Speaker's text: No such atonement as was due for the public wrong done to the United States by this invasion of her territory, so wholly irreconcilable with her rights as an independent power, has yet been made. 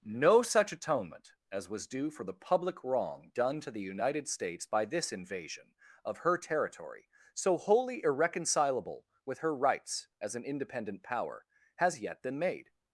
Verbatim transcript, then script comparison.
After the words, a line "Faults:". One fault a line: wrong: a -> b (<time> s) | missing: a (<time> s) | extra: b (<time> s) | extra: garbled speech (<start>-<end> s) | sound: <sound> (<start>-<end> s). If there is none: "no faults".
No such atonement as was due for the public wrong done to the United States by this invasion of her territory, so wholly irreconcilable with her rights as an independent power, has yet been made.
Faults:
no faults